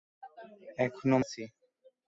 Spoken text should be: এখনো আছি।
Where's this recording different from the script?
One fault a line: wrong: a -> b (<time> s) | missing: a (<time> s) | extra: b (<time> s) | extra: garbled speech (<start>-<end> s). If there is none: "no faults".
no faults